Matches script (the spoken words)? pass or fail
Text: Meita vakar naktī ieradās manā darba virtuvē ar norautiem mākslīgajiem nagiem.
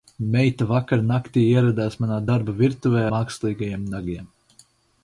fail